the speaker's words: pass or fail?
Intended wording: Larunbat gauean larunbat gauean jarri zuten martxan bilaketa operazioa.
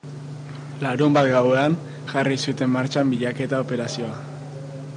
fail